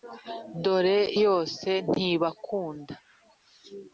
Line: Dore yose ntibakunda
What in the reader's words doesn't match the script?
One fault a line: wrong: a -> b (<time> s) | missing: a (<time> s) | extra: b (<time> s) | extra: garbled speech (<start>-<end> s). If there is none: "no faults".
no faults